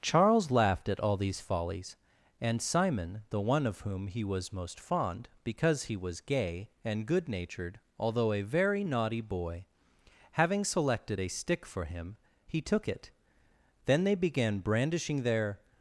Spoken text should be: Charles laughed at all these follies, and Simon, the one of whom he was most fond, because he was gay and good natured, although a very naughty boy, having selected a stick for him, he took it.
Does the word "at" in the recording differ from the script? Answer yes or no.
no